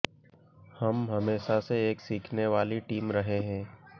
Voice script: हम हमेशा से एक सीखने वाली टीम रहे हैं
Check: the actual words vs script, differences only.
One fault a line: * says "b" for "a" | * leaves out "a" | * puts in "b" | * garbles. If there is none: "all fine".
all fine